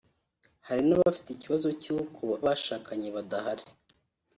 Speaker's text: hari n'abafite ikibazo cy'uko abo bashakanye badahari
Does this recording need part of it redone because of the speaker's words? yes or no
yes